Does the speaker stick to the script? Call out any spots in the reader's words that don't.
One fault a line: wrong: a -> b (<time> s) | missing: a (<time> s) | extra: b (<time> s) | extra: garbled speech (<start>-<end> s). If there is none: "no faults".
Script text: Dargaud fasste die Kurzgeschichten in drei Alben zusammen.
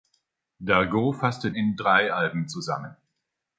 missing: die Kurzgeschichten (1.5 s)